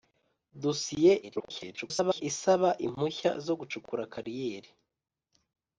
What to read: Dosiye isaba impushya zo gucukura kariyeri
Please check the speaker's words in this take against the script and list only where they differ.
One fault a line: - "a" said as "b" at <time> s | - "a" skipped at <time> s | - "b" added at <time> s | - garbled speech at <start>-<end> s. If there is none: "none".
- garbled speech at 1.2-2.2 s